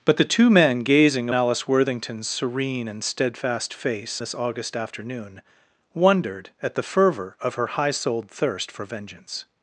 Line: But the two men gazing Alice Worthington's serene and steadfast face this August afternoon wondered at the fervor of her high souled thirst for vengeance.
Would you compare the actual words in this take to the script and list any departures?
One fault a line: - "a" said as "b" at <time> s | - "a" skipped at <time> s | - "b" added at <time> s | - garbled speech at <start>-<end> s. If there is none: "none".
none